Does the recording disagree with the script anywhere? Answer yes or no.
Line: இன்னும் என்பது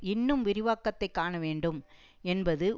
yes